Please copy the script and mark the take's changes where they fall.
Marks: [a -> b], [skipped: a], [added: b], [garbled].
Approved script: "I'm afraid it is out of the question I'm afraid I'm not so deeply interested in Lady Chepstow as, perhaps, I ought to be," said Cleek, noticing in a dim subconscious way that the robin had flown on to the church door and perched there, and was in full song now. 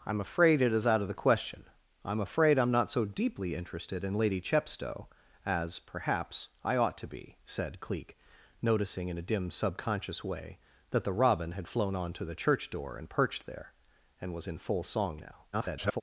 "I'm afraid it is out of the question I'm afraid I'm not so deeply interested in Lady Chepstow as, perhaps, I ought to be," said Cleek, noticing in a dim subconscious way that the robin had flown on to the church door and perched there, and was in full song now. [garbled]